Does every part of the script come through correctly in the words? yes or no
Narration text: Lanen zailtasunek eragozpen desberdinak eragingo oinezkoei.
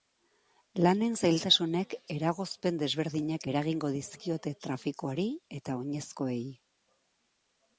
no